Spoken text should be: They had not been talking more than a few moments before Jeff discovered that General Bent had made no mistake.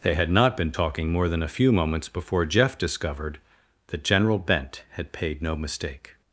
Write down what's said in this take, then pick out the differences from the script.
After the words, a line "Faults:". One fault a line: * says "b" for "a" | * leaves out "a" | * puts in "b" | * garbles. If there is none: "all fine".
They had not been talking more than a few moments before Jeff discovered that General Bent had paid no mistake.
Faults:
* says "paid" for "made"